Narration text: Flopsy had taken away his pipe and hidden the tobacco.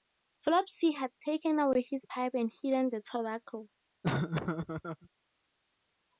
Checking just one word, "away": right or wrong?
right